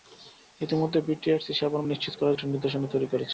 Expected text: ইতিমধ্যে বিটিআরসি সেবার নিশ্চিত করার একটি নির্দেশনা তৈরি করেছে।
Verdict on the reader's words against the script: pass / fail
pass